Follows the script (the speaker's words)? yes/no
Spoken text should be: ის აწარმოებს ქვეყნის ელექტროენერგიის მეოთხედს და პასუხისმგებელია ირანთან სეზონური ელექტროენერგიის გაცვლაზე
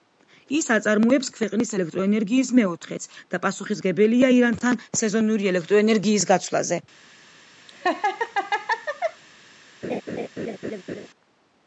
yes